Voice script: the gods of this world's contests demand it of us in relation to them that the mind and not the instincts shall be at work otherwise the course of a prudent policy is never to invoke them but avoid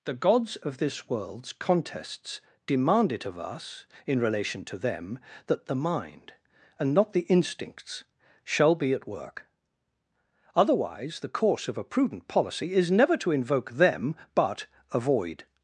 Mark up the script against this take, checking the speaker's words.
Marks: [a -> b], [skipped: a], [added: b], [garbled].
the gods of this world's contests demand it of us in relation to them that the mind and not the instincts shall be at work otherwise the course of a prudent policy is never to invoke them but avoid